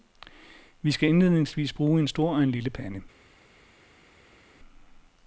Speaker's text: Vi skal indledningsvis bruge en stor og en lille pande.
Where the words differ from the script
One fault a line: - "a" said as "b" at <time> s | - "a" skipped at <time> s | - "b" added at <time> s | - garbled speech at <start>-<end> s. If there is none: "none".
none